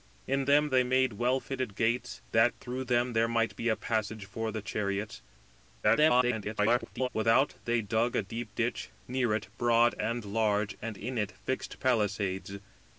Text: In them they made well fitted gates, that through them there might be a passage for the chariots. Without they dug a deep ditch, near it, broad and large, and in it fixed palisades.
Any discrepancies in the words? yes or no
yes